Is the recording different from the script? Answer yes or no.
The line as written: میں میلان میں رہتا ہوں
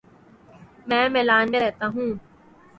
no